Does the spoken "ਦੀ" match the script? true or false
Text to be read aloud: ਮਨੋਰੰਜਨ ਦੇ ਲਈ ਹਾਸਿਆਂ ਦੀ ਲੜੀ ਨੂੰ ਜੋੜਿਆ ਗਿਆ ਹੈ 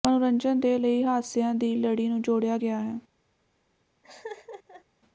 true